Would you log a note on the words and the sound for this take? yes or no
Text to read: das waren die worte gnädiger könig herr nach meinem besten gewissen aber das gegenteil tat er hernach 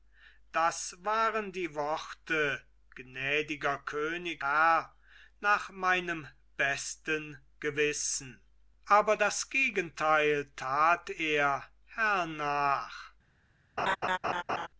yes